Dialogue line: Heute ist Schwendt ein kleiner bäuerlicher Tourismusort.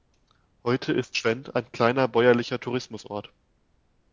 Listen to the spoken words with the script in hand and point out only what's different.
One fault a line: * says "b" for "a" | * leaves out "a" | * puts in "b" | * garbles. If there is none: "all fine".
all fine